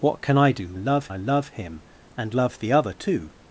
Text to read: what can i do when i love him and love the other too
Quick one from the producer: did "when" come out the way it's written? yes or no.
no